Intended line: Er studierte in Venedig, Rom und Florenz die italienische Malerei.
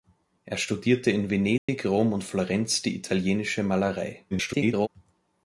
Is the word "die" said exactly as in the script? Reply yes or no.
yes